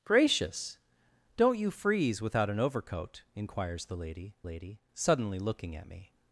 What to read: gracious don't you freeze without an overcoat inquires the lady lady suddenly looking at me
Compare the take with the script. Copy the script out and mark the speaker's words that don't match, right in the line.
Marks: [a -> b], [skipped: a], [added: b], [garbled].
gracious don't you freeze without an overcoat inquires the lady lady suddenly looking at me